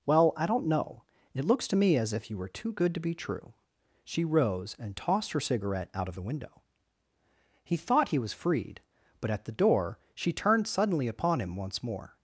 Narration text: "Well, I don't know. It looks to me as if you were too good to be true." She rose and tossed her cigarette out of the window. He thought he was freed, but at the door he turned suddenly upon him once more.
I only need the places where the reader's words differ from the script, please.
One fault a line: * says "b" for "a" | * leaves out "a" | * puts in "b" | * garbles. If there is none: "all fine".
* says "she" for "he"